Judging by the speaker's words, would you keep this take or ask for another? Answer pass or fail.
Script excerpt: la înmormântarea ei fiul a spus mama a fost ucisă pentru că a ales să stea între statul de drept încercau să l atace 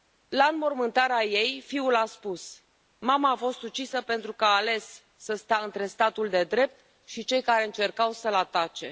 fail